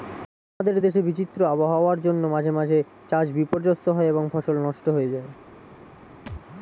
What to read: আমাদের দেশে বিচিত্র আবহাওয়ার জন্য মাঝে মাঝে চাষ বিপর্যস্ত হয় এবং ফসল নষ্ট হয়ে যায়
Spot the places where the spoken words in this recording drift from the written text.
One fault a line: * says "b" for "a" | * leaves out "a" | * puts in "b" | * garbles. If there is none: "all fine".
all fine